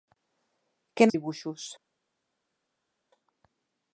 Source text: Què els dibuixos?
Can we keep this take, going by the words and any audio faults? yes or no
yes